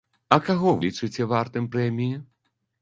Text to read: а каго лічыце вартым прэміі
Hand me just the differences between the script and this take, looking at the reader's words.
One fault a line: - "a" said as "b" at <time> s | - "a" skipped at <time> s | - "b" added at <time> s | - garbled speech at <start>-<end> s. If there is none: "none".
none